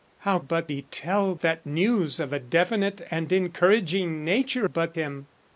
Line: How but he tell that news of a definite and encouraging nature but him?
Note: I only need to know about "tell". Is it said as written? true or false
true